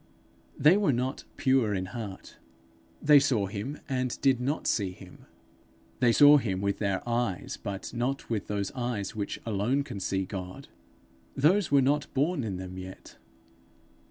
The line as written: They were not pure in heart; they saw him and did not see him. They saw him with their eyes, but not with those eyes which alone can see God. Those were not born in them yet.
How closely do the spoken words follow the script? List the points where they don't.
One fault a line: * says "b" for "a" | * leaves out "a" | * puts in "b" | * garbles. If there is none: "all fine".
all fine